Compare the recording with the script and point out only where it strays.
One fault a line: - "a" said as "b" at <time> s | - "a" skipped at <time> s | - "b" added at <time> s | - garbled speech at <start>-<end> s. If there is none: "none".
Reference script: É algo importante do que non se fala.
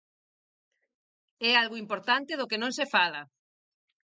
none